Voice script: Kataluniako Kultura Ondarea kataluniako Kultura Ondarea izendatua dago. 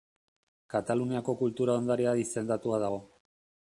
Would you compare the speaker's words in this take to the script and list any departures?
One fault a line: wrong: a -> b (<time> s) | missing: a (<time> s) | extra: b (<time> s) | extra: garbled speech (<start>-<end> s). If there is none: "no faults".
missing: kataluniako Kultura Ondarea (2.2 s)